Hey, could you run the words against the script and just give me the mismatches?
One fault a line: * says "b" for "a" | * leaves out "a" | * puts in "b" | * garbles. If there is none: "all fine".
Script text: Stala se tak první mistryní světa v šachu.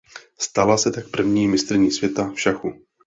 all fine